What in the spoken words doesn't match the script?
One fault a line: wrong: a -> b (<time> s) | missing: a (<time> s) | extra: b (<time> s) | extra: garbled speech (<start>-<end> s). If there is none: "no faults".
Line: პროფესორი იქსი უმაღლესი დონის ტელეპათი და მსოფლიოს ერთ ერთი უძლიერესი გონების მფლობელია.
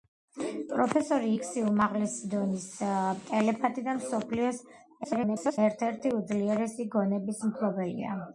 extra: garbled speech (5.0-5.6 s)